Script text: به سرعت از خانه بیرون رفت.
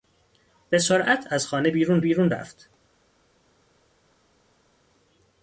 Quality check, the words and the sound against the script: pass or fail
fail